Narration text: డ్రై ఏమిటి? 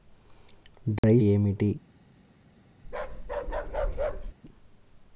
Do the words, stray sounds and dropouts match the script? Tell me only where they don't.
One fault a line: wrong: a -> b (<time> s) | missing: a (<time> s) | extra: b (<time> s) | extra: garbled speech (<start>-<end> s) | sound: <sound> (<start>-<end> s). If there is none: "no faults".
sound: dropout (1.0-1.0 s)
sound: bark (2.8-4.3 s)